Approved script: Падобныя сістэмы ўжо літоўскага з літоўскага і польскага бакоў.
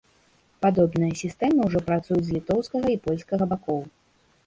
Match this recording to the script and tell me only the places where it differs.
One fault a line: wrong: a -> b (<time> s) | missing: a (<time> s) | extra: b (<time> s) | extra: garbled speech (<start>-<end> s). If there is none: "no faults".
wrong: літоўскага -> працуюць (1.9 s)